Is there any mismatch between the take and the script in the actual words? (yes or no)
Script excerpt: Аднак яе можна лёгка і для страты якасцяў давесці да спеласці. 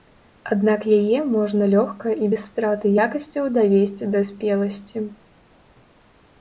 yes